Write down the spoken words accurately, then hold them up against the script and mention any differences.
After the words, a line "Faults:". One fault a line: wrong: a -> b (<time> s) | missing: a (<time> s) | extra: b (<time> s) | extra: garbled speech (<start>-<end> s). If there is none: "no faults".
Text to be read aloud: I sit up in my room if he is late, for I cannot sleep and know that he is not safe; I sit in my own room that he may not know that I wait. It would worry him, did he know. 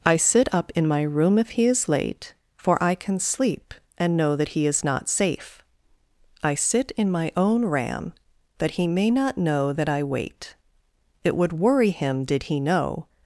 I sit up in my room if he is late, for I can sleep and know that he is not safe; I sit in my own ram that he may not know that I wait. It would worry him, did he know.
Faults:
wrong: cannot -> can (3.0 s)
wrong: room -> ram (7.7 s)